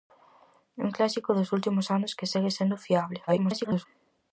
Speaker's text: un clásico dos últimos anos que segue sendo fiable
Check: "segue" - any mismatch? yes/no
no